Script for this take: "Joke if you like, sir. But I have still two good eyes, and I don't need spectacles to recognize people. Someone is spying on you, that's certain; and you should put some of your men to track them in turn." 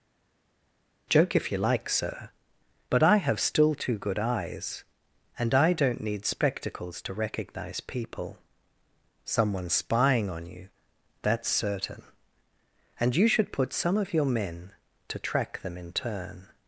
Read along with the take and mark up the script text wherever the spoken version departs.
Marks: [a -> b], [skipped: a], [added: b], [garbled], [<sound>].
"Joke if you like, sir. But I have still two good eyes, and I don't need spectacles to recognize people. Someone [skipped: is] spying on you, that's certain; and you should put some of your men to track them in turn."